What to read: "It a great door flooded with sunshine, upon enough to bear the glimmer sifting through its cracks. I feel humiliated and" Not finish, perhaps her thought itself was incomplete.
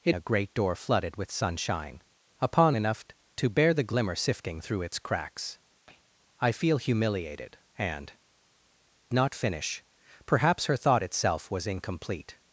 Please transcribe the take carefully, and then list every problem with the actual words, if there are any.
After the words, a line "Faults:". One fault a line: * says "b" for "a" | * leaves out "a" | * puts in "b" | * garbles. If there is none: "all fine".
"It a great door flooded with sunshine, upon enough to bear the glimmer sifting through its cracks. I feel humiliated and" Not finish, perhaps her thought itself was incomplete.
Faults:
all fine